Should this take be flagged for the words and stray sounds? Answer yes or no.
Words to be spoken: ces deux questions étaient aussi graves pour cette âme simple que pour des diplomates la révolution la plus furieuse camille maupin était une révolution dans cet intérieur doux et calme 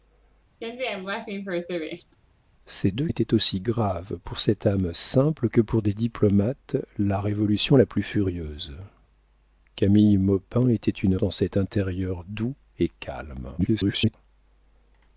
yes